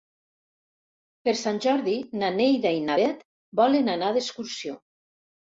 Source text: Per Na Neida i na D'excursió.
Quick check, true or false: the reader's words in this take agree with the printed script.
false